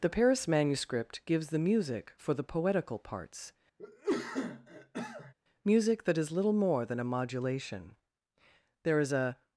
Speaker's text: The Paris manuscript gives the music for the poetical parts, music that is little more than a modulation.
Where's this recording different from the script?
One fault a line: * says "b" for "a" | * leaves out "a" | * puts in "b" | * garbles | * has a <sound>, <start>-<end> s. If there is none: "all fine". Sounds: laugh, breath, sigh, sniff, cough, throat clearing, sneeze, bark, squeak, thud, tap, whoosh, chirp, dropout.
* has a cough, 3.8-5.3 s
* puts in "There is a"